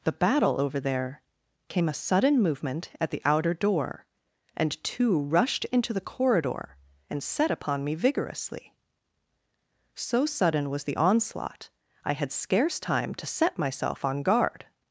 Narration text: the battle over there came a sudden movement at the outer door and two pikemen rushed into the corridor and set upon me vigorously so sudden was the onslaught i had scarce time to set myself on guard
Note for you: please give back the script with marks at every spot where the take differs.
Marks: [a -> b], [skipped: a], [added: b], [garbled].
the battle over there came a sudden movement at the outer door and two [skipped: pikemen] rushed into the corridor and set upon me vigorously so sudden was the onslaught i had scarce time to set myself on guard